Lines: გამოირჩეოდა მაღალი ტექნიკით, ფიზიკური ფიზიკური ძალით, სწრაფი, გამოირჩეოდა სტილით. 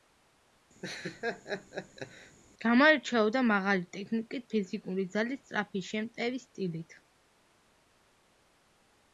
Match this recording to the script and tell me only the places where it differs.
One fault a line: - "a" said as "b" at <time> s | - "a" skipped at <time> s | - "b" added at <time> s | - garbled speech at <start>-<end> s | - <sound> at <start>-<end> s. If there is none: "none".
- laugh at 0.8-2.4 s
- "ფიზიკური" skipped at 5.1 s
- "გამოირჩეოდა" said as "შემტევი" at 5.9 s